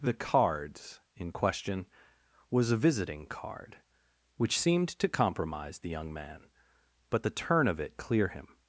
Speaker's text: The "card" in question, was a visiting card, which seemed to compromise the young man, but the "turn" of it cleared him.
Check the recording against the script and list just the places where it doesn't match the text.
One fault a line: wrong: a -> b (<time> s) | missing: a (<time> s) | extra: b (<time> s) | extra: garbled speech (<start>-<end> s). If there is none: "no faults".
wrong: card -> cards (0.1 s)
wrong: cleared -> clear (7.9 s)